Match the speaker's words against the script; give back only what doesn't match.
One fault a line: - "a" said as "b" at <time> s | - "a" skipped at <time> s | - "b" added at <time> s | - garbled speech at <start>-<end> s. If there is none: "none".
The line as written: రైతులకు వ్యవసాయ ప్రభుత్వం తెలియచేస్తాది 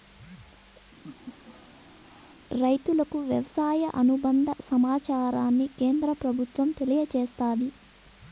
- "అనుబంద సమాచారాన్ని కేంద్ర" added at 4.0 s